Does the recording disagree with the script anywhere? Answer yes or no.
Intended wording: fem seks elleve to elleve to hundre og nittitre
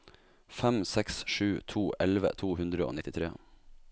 yes